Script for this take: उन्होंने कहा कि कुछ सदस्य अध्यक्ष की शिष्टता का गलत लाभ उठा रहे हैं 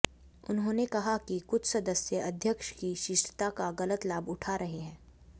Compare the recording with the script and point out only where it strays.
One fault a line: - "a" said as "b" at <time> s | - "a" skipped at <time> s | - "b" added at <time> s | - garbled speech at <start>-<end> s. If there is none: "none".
none